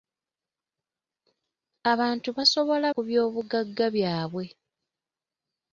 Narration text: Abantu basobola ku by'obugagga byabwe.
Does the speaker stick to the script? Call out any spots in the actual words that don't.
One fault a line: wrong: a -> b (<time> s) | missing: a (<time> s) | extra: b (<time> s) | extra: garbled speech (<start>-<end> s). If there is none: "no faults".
no faults